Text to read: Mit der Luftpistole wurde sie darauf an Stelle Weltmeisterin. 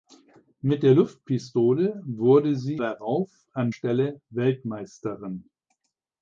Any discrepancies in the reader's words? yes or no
no